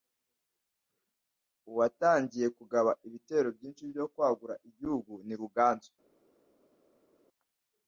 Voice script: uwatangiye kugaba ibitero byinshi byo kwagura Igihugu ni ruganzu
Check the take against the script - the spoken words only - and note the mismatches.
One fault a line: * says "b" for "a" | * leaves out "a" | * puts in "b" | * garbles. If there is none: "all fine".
all fine